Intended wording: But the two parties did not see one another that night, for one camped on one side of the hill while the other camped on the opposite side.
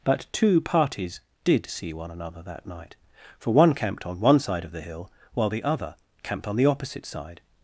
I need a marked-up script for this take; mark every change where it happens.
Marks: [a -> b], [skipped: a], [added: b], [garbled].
But [skipped: the] two parties did [skipped: not] see one another that night, for one camped on one side of the hill while the other camped on the opposite side.